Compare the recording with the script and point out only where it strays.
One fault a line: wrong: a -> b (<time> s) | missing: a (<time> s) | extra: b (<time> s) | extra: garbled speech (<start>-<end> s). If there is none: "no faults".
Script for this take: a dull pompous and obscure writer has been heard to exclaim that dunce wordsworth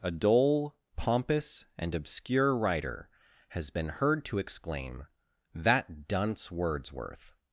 no faults